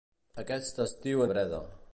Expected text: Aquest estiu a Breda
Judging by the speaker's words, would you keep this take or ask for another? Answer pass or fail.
pass